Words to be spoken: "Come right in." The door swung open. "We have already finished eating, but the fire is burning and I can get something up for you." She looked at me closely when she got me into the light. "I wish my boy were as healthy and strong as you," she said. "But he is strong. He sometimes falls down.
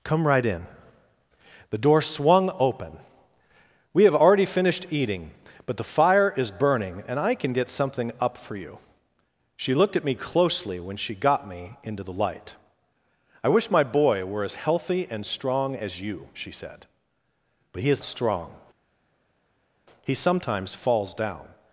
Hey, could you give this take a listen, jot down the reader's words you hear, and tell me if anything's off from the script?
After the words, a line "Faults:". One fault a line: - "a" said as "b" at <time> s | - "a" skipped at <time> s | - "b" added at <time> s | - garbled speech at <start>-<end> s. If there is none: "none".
"Come right in." The door swung open. "We have already finished eating, but the fire is burning and I can get something up for you." She looked at me closely when she got me into the light. "I wish my boy were as healthy and strong as you," she said. "But he is strong. He sometimes falls down.
Faults:
none